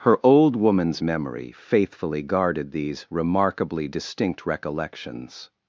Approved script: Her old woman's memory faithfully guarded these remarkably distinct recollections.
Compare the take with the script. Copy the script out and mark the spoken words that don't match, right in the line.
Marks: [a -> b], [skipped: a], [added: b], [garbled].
Her old woman's memory faithfully guarded these remarkably distinct recollections.